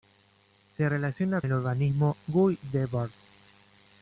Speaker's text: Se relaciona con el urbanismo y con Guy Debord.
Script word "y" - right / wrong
wrong